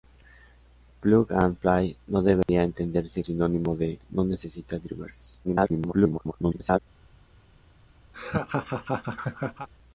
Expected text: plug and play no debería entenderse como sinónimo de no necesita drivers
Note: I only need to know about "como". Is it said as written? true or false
false